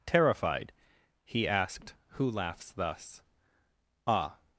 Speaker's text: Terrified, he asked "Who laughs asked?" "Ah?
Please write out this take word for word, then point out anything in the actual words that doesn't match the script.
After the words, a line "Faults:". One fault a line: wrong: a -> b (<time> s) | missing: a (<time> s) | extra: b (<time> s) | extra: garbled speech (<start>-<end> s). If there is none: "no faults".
Terrified, he asked "Who laughs thus?" "Ah?
Faults:
wrong: asked -> thus (2.7 s)